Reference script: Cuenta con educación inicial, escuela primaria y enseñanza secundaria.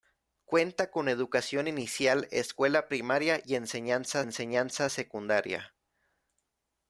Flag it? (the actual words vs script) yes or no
yes